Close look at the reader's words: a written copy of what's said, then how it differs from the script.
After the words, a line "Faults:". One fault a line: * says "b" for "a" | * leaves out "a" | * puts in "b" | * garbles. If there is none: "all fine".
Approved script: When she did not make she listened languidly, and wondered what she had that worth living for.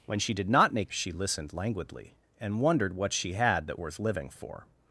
When she did not make she listened languidly, and wondered what she had that worth living for.
Faults:
all fine